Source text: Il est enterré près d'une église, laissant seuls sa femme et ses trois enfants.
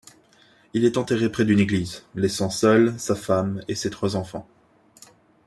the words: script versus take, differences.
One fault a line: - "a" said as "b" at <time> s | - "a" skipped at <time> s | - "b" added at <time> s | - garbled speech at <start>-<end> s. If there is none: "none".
none